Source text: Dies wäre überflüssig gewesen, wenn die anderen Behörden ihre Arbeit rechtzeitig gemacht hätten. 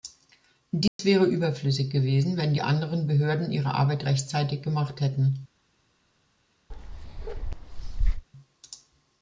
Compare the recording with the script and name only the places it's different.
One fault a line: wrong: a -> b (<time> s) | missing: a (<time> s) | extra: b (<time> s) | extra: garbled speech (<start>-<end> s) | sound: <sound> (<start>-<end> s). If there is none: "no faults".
sound: dropout (0.9-1.0 s)
sound: bark (6.7-8.2 s)